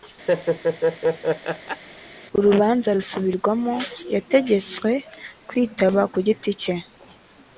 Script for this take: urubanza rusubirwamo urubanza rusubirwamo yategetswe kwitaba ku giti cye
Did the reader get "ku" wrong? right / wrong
right